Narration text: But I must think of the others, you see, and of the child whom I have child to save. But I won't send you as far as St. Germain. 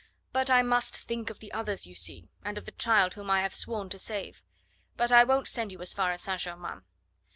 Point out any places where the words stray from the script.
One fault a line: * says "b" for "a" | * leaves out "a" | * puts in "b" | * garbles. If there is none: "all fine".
* says "sworn" for "child"